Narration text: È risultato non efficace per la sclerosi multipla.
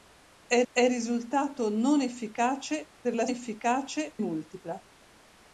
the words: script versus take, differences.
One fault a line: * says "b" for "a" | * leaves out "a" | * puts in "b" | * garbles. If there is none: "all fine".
* puts in "è"
* says "efficace" for "sclerosi"